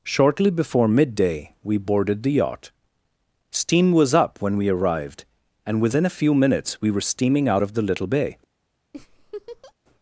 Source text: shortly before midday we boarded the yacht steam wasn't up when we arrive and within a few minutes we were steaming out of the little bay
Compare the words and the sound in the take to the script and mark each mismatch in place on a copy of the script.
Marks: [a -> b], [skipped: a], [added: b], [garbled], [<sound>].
shortly before midday we boarded the yacht steam [wasn't -> was] up when we [arrive -> arrived] and within a few minutes we were steaming out of the little bay [laugh]